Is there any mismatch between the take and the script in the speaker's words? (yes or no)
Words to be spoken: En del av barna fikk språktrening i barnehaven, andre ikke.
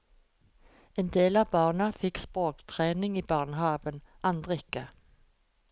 no